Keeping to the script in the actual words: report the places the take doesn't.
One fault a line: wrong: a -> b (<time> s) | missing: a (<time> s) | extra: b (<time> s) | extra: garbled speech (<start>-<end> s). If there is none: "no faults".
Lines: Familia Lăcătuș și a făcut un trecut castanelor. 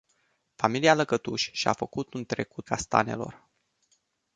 no faults